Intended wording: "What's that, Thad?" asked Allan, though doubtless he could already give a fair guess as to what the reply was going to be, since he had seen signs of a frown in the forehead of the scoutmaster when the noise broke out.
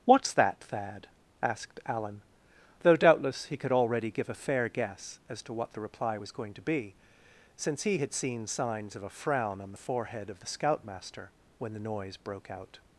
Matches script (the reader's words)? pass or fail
fail